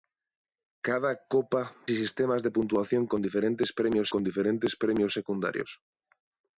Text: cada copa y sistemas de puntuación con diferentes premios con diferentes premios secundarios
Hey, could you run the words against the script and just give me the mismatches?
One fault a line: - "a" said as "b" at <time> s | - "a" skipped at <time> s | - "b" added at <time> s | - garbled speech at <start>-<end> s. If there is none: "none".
none